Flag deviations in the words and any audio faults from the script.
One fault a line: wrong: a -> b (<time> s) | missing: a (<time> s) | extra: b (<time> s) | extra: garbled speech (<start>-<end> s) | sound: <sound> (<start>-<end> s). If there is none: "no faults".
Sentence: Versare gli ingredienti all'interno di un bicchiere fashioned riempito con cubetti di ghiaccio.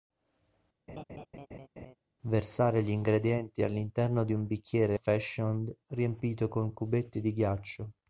sound: laugh (0.9-2.0 s)